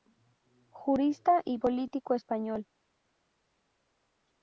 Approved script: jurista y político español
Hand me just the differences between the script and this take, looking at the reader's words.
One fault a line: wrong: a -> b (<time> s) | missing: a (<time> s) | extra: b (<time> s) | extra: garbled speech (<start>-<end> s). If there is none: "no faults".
no faults